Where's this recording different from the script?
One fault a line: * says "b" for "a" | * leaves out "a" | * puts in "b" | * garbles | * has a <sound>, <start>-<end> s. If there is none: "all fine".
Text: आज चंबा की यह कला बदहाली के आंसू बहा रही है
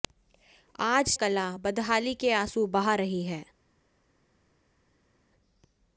* leaves out "चंबा की यह"